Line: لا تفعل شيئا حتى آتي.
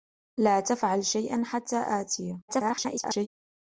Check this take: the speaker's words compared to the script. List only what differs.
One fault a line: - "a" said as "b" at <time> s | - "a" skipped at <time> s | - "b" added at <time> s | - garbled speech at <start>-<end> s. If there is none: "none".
- garbled speech at 2.5-3.3 s